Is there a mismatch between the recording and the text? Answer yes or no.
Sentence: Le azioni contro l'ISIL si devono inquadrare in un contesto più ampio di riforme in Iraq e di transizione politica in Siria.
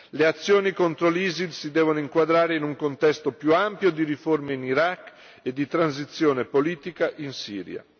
no